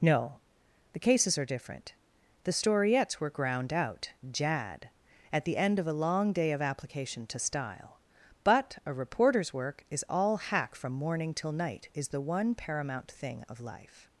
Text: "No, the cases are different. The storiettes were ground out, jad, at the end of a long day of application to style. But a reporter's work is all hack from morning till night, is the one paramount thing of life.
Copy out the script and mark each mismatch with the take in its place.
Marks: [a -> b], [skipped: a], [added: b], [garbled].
"No, the cases are different. The storiettes were ground out, jad, at the end of a long day of application to style. But a reporter's work is all hack from morning till night, is the one paramount thing of life.